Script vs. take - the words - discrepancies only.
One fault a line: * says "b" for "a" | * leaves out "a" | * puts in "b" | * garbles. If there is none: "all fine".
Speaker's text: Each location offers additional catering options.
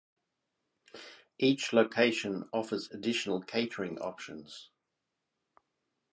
all fine